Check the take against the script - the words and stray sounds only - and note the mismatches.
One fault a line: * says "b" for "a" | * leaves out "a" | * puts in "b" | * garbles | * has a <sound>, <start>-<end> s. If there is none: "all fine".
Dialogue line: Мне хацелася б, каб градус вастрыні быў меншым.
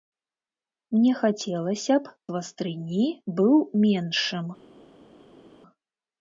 * leaves out "каб градус"